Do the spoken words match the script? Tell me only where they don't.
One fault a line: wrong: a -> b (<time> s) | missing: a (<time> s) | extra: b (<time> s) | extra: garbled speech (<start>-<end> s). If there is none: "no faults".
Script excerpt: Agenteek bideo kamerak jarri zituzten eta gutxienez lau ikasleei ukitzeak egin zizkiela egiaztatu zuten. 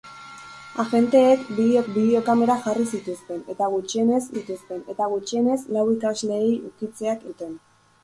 extra: bideo (1.9 s)
extra: zituzten eta gutxienez (4.4 s)
missing: egin zizkiela egiaztatu (7.3 s)